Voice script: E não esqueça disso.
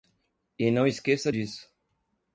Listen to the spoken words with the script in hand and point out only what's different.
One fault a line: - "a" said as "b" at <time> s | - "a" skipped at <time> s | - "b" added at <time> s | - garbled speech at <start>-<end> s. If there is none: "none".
none